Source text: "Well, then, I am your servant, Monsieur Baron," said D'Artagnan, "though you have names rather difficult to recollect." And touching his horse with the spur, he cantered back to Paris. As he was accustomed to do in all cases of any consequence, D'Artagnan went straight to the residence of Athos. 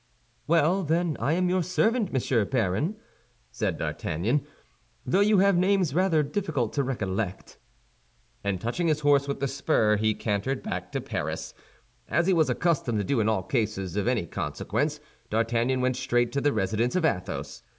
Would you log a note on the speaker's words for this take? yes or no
no